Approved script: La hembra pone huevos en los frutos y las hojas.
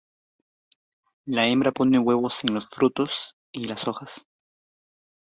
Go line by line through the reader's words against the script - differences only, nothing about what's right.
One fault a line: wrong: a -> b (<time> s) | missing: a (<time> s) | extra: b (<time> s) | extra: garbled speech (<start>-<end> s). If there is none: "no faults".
no faults